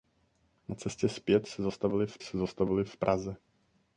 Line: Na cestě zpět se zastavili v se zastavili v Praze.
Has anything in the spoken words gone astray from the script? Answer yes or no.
no